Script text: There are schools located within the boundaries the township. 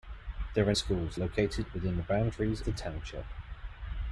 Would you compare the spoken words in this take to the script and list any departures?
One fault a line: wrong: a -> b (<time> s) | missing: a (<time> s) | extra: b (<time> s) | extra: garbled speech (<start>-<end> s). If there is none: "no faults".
no faults